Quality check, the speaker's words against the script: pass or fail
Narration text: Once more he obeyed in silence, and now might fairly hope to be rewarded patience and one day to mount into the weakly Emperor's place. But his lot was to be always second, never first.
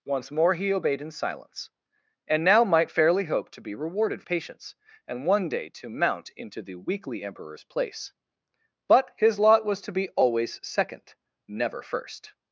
pass